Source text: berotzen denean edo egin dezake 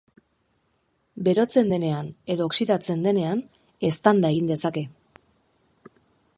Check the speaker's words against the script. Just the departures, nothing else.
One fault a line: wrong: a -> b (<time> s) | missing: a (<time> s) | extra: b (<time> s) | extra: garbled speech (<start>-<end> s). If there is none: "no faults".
extra: oxidatzen denean eztanda (2.5 s)